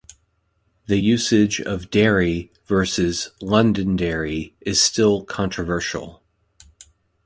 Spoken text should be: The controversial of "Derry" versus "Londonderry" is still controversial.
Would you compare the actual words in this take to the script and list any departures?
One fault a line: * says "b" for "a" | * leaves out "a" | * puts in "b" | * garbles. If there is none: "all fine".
* says "usage" for "controversial"